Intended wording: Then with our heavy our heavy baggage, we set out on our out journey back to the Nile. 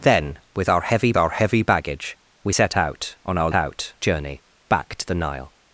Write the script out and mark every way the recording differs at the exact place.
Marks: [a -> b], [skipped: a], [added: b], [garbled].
Then with our heavy our heavy baggage, we set out on our out journey back to the Nile.